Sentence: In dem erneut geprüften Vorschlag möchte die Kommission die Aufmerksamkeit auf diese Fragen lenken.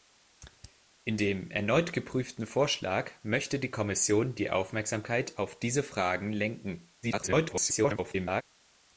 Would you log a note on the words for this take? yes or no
yes